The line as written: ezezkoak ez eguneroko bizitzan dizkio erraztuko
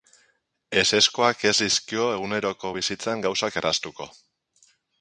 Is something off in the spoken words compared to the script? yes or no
yes